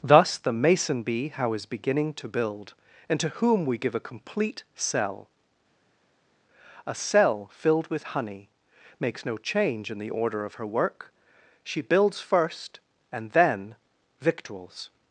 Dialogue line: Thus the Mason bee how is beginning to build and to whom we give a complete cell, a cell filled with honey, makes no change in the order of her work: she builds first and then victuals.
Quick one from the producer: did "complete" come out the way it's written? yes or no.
yes